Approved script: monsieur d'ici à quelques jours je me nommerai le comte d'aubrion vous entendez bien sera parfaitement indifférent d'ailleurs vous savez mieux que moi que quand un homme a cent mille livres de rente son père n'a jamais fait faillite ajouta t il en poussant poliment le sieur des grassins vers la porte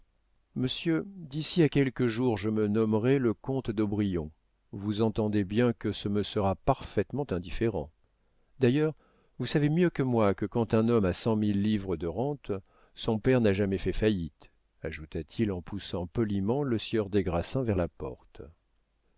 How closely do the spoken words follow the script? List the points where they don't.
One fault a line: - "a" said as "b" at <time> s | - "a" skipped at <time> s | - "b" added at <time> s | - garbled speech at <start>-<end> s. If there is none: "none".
- "que ce me" added at 5.7 s